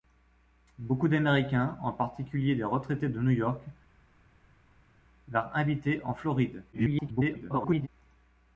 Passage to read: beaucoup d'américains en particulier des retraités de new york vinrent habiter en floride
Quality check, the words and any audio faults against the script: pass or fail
fail